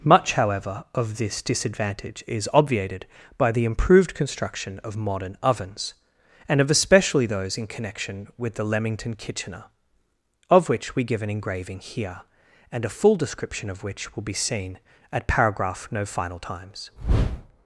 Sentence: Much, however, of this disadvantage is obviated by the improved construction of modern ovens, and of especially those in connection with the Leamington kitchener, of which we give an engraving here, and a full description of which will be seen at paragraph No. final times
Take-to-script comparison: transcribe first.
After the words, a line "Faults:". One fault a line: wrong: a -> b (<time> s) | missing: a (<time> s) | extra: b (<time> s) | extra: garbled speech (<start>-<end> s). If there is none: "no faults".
Much, however, of this disadvantage is obviated by the improved construction of modern ovens, and of especially those in connection with the Leamington kitchener, of which we give an engraving here, and a full description of which will be seen at paragraph No. final times
Faults:
no faults